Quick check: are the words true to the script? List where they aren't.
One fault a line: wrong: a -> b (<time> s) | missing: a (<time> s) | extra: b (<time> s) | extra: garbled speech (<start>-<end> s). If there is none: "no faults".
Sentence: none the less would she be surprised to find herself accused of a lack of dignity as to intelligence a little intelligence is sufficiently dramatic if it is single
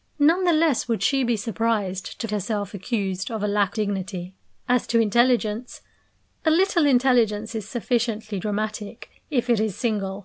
missing: find (2.3 s)
missing: of (3.8 s)